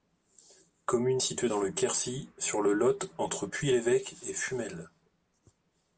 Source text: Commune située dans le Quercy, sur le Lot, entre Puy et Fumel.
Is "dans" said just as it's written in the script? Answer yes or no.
yes